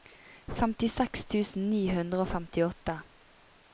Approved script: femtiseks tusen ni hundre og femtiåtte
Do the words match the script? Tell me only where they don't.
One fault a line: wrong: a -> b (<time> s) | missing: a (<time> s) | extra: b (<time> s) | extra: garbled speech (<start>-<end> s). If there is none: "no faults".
no faults